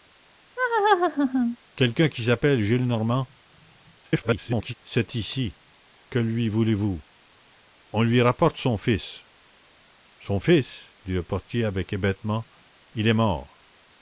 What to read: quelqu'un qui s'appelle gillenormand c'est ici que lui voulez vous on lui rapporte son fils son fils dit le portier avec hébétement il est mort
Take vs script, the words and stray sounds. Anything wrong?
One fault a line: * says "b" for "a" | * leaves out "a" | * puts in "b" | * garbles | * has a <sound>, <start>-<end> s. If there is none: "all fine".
* has a laugh, 0.6-1.6 s
* garbles